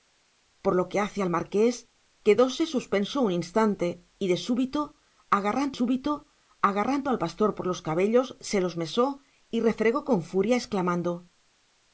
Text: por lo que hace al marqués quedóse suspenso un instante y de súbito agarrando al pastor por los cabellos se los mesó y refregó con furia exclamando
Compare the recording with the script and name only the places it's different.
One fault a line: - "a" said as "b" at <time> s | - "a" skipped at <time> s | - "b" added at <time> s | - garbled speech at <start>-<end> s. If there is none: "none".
- "súbito agarrando" added at 5.8 s